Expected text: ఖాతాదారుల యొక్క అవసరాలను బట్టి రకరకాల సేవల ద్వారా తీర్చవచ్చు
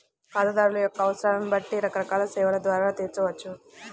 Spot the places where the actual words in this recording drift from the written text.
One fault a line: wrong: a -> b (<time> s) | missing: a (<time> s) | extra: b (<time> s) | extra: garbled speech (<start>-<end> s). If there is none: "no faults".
no faults